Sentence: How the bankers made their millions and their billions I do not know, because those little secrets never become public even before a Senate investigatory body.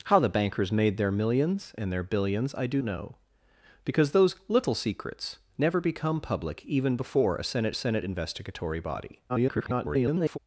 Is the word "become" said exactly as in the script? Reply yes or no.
yes